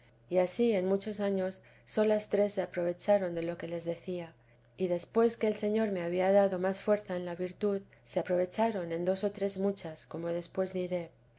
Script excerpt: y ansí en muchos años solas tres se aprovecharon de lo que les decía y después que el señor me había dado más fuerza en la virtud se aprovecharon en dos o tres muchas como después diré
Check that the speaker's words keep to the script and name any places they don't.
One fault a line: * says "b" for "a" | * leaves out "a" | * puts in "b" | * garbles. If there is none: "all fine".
all fine